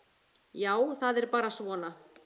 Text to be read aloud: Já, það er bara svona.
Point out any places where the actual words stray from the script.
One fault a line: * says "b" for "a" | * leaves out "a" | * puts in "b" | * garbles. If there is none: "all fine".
all fine